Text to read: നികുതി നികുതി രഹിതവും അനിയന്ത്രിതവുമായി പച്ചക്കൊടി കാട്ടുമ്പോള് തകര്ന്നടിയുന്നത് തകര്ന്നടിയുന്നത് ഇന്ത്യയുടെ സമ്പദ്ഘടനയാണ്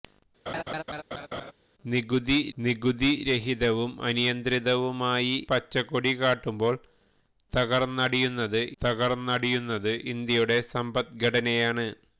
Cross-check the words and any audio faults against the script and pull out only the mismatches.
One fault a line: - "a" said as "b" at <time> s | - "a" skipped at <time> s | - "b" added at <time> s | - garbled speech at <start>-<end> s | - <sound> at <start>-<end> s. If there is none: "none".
- laugh at 0.5-1.5 s